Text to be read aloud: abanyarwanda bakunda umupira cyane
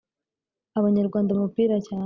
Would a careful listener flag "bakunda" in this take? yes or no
yes